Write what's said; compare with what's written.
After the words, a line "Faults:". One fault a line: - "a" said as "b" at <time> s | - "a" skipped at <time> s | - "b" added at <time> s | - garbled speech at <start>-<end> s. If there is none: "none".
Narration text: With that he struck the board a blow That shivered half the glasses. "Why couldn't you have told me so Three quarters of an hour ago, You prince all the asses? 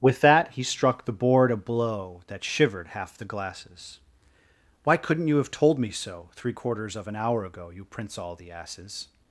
With that he struck the board a blow That shivered half the glasses. "Why couldn't you have told me so Three quarters of an hour ago, You prince all the asses?
Faults:
none